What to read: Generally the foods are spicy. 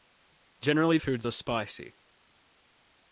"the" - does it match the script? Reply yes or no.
no